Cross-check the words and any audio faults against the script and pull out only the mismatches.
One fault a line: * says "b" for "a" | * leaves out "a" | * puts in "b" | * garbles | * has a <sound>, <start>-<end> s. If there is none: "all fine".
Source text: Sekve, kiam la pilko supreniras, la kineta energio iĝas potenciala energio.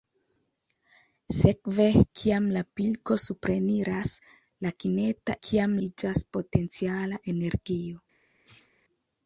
* says "kiam" for "energio"
* has a sneeze, 8.4-8.7 s